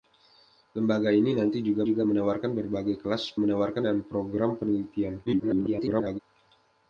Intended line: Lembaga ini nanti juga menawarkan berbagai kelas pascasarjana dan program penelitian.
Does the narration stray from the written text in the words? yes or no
yes